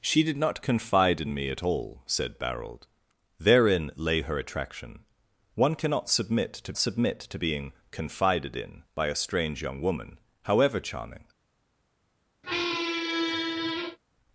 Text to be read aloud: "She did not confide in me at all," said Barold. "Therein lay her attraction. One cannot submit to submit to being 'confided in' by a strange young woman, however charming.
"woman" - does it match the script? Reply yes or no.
yes